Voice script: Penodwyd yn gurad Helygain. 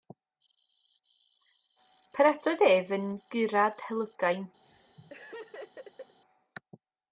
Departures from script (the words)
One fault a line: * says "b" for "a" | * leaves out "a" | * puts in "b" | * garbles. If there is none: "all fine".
* puts in "ef"